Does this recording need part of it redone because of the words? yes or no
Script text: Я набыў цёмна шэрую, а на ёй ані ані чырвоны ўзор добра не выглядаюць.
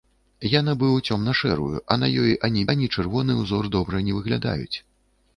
no